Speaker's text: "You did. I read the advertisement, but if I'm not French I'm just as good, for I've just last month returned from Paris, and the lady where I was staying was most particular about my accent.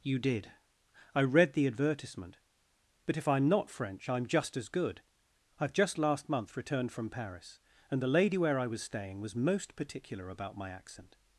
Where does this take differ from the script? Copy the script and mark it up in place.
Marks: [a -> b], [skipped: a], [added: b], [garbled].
"You did. I read the advertisement, but if I'm not French I'm just as good, [skipped: for] I've just last month returned from Paris, and the lady where I was staying was most particular about my accent.